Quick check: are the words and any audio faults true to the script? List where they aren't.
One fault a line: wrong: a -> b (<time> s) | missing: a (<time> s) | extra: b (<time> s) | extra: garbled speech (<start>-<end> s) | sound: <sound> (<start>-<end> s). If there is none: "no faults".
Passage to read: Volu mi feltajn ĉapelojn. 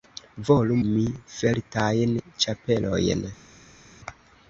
no faults